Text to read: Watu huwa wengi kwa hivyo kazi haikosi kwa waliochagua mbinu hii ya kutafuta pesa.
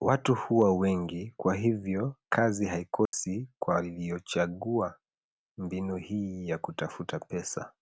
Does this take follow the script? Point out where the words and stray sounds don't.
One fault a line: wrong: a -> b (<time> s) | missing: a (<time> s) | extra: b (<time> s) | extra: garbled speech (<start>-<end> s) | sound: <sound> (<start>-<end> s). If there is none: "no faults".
sound: dropout (3.1-3.1 s)